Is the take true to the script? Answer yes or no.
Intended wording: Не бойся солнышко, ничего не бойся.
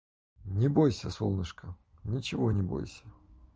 yes